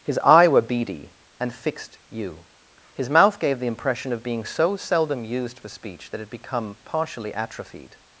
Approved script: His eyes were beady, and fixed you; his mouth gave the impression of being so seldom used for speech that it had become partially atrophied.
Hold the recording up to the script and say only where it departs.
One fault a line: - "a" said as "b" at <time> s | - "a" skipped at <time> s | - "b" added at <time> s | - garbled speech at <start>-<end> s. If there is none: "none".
- "eyes" said as "eye" at 0.2 s